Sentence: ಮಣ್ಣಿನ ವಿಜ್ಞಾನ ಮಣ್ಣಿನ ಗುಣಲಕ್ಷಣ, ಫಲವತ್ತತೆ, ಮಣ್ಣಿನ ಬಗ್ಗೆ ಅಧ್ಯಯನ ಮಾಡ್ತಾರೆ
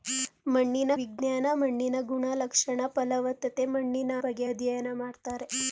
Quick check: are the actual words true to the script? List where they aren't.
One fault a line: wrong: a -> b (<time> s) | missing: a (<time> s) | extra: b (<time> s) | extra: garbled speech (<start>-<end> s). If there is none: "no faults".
no faults